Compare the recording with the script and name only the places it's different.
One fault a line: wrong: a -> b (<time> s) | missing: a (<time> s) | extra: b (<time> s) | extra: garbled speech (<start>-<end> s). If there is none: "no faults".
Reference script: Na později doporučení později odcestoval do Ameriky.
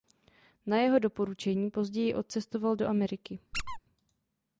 wrong: později -> jeho (0.8 s)